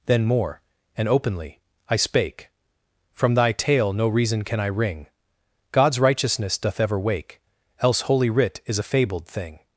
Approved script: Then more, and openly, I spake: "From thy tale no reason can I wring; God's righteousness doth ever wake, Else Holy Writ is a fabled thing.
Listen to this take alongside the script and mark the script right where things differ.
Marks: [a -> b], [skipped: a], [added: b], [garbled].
Then more, and openly, I spake: "From thy tale no reason can I wring; God's righteousness doth ever wake, Else Holy Writ is a fabled thing.